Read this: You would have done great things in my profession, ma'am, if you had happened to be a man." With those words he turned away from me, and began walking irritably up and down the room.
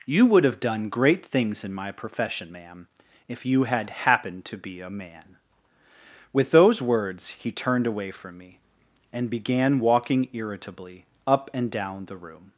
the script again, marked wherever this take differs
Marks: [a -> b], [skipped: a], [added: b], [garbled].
You would have done great things in my profession, ma'am, if you had happened to be a man." With those words he turned away from me, and began walking irritably up and down the room.